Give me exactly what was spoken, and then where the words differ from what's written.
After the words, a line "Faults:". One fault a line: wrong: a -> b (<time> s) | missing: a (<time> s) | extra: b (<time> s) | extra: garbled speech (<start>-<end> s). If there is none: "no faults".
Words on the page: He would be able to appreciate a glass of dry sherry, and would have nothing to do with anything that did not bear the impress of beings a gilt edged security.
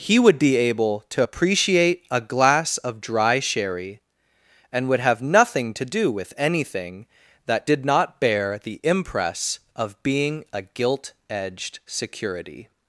He would be able to appreciate a glass of dry sherry, and would have nothing to do with anything that did not bear the impress of being a gilt edged security.
Faults:
wrong: beings -> being (10.0 s)